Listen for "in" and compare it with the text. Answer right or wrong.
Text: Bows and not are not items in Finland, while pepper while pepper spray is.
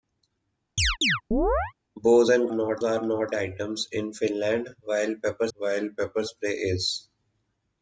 right